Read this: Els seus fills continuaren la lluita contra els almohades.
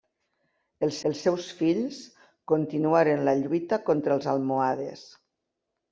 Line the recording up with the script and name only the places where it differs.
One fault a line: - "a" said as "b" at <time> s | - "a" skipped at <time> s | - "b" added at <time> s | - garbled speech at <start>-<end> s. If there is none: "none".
- "els" added at 1.1 s